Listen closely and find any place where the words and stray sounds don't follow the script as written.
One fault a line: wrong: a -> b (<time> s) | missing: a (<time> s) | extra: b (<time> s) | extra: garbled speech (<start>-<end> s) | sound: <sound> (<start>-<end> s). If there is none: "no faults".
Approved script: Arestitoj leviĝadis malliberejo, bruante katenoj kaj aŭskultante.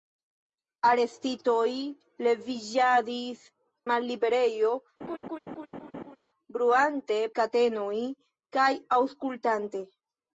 sound: laugh (5.0-6.2 s)